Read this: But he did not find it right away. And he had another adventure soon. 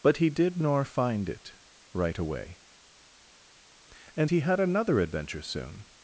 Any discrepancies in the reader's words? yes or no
yes